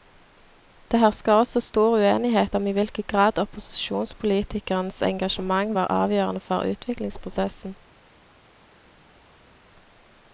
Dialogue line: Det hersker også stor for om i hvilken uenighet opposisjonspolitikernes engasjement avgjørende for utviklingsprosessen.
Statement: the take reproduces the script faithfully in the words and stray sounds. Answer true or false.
false